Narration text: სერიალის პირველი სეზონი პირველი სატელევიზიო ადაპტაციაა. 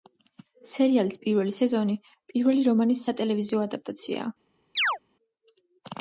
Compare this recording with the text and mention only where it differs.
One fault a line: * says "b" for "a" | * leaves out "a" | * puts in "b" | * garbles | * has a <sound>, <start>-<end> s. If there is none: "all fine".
* puts in "რომანის"
* has a chirp, 4.8-5.0 s